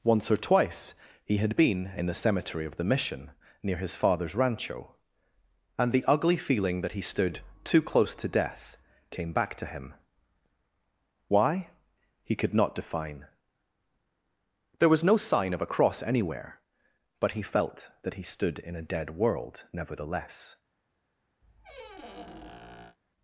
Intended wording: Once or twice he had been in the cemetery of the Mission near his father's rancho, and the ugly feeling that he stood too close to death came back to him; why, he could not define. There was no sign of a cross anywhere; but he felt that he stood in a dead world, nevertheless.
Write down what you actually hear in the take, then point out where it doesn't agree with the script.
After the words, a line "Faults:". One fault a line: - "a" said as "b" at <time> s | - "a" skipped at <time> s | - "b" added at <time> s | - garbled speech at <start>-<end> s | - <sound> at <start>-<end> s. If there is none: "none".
Once or twice he had been in the cemetery of the Mission near his father's rancho, and the ugly feeling that he stood too close to death came back to him; why, he could not define. There was no sign of a cross anywhere; but he felt that he stood in a dead world, nevertheless.
Faults:
- squeak at 21.4-23.0 s